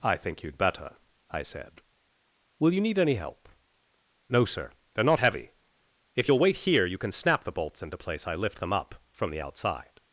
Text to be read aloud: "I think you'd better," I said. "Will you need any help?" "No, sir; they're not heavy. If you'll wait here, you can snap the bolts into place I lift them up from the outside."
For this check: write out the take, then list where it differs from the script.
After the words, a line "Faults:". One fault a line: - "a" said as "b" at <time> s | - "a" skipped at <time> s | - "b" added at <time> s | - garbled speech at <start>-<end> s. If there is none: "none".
"I think you'd better," I said. "Will you need any help?" "No, sir; they're not heavy. If you'll wait here, you can snap the bolts into place I lift them up from the outside."
Faults:
none